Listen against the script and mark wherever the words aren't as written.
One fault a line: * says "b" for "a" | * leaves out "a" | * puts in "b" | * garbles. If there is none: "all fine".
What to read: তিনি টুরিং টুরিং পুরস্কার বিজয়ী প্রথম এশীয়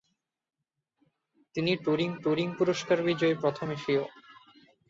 all fine